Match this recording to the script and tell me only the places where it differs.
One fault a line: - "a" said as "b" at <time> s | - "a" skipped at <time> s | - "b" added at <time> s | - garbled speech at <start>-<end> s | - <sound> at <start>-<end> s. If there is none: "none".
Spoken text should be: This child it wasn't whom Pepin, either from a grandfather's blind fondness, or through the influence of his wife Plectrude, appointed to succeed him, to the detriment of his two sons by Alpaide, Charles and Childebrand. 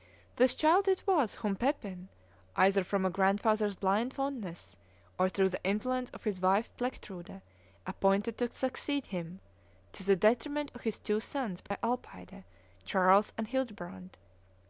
- "wasn't" said as "was" at 1.1 s
- dropout at 11.7-11.7 s